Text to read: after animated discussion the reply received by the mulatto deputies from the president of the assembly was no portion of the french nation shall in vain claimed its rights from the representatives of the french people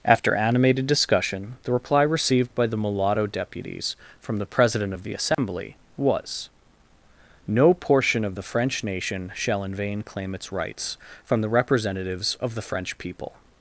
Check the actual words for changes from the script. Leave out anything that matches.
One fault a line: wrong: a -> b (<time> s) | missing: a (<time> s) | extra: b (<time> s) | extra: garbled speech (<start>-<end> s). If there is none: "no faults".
wrong: claimed -> claim (10.0 s)